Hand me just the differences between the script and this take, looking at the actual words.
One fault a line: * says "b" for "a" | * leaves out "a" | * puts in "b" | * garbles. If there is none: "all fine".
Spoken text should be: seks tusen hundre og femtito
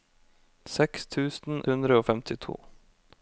all fine